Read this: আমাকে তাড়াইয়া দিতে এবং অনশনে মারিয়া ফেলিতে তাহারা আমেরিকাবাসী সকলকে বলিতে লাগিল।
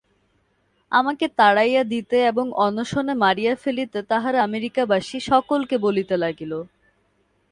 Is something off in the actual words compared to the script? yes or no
no